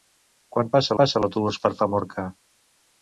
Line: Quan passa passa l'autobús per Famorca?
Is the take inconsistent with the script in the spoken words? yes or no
no